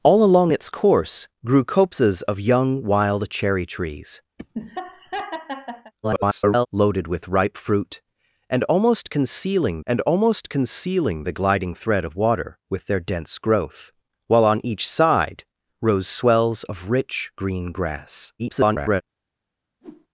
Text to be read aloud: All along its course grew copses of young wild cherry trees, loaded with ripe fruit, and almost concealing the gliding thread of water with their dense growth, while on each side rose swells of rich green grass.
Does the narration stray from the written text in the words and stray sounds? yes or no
yes